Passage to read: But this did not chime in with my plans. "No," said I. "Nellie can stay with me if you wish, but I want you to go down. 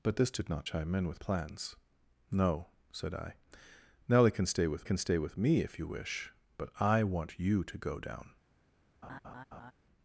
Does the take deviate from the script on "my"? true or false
true